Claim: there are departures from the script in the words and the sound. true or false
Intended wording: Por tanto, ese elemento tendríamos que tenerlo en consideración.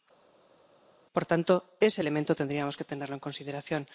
false